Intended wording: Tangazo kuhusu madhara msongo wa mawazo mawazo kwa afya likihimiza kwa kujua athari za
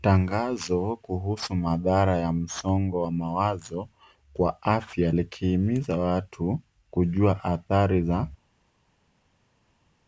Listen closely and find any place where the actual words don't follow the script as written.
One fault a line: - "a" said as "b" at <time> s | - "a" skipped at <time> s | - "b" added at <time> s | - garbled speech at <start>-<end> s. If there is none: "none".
- "ya" added at 2.2 s
- "mawazo" skipped at 3.9 s
- "kwa" said as "watu" at 6.0 s